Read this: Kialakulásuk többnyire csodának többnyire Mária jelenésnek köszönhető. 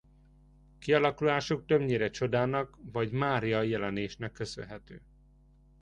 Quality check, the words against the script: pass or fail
fail